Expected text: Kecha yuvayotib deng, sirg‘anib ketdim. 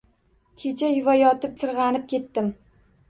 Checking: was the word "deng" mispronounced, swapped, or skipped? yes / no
yes